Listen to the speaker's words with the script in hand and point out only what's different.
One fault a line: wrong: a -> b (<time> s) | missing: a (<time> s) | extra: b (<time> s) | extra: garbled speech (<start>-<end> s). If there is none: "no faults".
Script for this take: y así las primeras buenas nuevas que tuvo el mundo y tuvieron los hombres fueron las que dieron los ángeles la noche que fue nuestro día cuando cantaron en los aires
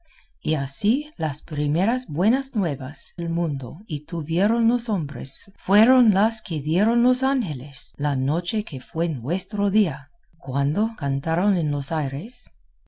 missing: que tuvo (3.2 s)